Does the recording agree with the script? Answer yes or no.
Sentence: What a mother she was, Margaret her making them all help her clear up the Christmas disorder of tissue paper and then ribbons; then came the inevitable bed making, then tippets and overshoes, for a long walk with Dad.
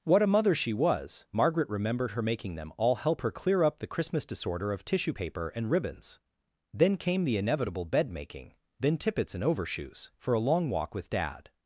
no